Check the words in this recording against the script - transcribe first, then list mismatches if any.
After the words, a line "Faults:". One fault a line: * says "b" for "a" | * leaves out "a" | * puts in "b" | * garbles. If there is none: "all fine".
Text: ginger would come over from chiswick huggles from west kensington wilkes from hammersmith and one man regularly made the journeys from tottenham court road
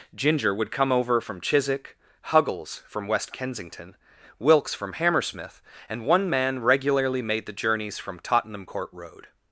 ginger would come over from chiswick huggles from west kensington wilkes from hammersmith and one man regularly made the journeys from tottenham court road
Faults:
all fine